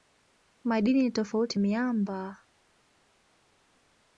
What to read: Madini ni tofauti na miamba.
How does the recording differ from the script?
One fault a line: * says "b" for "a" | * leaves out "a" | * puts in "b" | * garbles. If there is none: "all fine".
* leaves out "na"